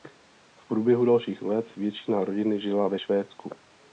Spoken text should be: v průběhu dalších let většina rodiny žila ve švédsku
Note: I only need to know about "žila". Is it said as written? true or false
true